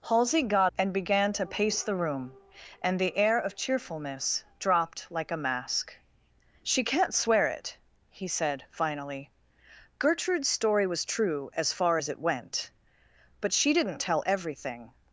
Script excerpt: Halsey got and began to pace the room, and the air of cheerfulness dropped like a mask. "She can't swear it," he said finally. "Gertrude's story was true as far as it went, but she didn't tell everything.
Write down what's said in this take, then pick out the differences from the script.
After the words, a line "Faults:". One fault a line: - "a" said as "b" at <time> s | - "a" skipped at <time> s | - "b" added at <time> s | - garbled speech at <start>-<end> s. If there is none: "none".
Halsey got and began to pace the room, and the air of cheerfulness dropped like a mask. "She can't swear it," he said finally. "Gertrude's story was true as far as it went, but she didn't tell everything.
Faults:
none